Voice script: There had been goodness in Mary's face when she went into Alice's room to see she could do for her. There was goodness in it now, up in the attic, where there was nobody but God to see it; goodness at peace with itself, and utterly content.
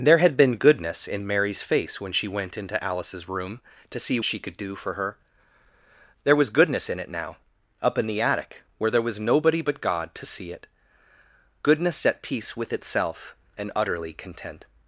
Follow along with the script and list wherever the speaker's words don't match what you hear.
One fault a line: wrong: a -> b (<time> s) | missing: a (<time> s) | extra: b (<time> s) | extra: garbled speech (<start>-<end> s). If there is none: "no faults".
no faults